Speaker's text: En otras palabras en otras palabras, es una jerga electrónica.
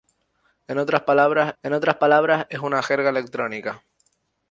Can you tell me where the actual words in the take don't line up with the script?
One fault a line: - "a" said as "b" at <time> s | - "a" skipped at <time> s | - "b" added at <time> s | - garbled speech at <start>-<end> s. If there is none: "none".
none